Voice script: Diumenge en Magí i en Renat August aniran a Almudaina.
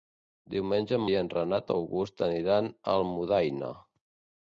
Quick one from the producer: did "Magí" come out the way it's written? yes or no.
no